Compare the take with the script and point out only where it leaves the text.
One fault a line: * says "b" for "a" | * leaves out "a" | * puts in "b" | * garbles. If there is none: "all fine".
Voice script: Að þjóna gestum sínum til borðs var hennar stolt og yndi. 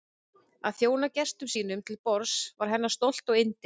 all fine